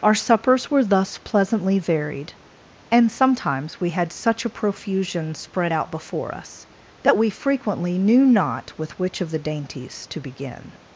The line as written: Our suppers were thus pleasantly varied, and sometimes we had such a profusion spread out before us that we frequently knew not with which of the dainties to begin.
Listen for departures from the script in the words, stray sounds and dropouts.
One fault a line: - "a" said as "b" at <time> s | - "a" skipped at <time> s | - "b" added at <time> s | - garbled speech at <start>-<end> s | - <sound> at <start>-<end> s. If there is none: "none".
none